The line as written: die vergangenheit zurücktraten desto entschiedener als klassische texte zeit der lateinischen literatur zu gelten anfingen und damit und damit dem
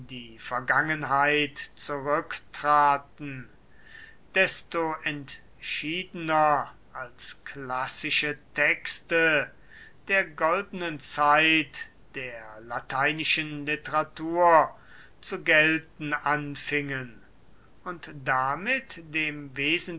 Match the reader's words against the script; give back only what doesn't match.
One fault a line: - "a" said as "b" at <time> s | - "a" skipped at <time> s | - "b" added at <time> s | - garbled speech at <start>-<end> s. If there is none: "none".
- "der goldenen" added at 10.1 s
- "und damit" skipped at 19.0 s